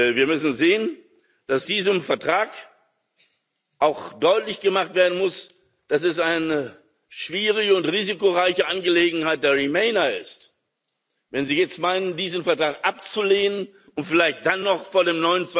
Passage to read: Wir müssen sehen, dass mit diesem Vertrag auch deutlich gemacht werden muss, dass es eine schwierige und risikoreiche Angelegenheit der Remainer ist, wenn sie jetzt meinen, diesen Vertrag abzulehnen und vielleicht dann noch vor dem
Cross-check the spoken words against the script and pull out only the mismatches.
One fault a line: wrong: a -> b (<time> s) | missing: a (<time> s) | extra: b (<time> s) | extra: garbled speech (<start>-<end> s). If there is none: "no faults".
missing: mit (1.7 s)